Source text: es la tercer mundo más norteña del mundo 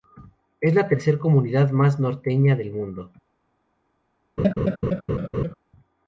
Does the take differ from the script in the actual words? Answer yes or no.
yes